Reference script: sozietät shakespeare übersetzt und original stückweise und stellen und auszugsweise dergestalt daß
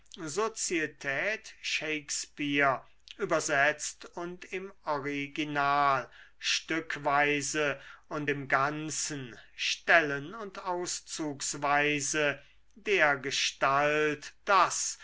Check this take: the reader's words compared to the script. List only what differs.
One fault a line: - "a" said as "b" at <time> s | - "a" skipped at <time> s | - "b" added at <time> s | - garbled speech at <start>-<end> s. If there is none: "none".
- "im" added at 4.5 s
- "im ganzen" added at 8.3 s